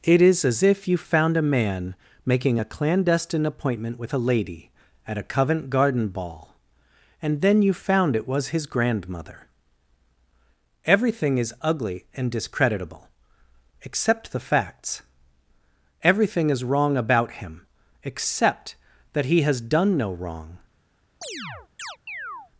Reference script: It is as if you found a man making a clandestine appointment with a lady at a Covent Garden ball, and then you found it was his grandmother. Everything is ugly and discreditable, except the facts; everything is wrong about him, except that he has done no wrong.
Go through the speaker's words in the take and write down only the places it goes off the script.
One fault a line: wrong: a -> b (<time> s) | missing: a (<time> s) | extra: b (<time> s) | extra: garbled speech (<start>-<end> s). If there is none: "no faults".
no faults